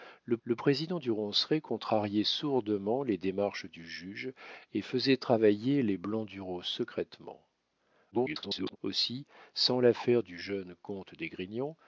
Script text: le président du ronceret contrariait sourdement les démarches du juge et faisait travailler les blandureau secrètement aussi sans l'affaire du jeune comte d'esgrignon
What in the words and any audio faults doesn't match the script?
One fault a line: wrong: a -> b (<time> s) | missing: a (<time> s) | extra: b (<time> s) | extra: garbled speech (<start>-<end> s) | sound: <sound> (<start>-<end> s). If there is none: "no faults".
extra: le (0.4 s)
extra: garbled speech (8.1-8.8 s)